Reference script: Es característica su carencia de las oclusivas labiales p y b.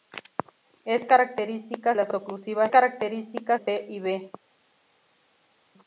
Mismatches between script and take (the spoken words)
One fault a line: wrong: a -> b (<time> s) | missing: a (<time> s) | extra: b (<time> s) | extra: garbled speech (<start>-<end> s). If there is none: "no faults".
missing: su carencia de (1.9 s)
wrong: labiales -> característica (2.7 s)